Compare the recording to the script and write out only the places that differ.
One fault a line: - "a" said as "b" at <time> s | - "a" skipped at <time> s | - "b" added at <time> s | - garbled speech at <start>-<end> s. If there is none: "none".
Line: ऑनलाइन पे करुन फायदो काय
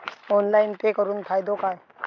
none